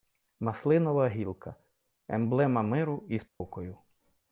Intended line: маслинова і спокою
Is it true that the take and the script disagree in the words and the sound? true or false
true